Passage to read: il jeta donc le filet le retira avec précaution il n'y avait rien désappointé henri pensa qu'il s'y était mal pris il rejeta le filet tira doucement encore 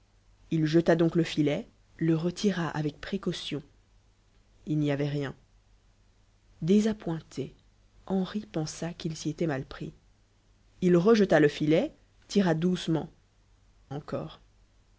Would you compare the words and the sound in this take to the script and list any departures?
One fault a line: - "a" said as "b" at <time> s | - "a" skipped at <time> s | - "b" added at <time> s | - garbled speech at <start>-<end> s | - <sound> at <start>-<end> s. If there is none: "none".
none